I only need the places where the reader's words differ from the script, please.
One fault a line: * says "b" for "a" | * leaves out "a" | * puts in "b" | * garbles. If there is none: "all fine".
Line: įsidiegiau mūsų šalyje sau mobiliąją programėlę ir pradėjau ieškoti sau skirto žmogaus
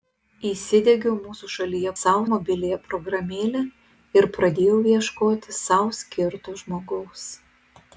all fine